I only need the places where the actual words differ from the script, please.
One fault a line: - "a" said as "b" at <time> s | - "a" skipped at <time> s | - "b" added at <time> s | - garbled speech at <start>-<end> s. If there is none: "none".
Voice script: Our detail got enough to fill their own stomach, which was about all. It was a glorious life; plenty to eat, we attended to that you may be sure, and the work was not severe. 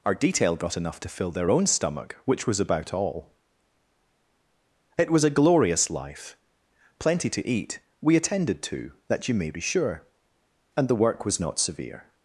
none